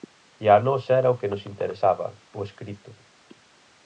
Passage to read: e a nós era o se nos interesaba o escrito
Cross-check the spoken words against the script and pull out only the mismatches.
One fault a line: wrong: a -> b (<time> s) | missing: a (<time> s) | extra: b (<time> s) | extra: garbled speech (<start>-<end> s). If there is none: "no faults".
wrong: se -> que (1.2 s)